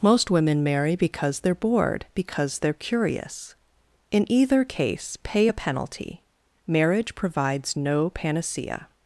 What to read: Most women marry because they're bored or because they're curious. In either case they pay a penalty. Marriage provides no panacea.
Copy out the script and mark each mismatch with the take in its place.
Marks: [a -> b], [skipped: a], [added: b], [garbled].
Most women marry because they're bored [skipped: or] because they're curious. In either case [skipped: they] pay a penalty. Marriage provides no panacea.